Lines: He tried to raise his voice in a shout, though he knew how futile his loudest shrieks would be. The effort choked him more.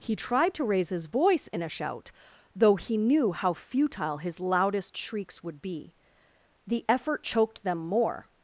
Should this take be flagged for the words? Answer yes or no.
yes